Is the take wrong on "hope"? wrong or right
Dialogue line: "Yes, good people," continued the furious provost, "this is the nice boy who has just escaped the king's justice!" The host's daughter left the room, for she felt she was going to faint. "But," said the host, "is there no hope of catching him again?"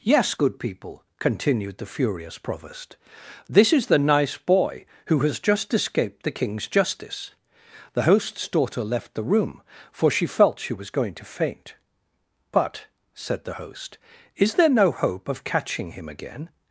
right